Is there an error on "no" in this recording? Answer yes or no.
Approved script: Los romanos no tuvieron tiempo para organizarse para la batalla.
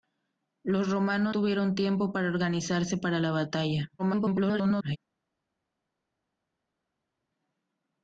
yes